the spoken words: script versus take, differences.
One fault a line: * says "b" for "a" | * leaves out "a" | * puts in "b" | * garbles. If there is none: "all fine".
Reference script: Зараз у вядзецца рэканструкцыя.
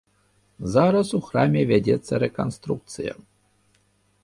* puts in "храме"